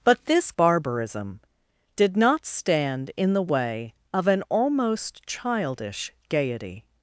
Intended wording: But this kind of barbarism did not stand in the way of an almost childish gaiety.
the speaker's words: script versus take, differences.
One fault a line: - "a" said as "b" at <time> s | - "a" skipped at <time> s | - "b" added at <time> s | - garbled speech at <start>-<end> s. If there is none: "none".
- "kind of" skipped at 0.5 s